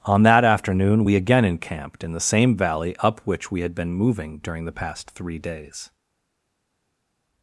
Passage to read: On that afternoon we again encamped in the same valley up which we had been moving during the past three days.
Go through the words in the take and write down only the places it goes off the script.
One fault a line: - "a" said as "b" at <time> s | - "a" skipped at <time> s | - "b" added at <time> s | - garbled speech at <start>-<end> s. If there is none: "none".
none